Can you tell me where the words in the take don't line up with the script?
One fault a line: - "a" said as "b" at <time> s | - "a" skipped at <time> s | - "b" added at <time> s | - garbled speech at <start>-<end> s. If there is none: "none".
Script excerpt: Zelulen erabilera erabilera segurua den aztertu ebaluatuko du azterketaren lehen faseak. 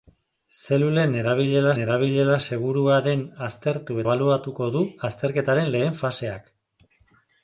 none